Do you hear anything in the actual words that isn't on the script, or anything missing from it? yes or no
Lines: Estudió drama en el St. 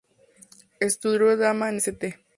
yes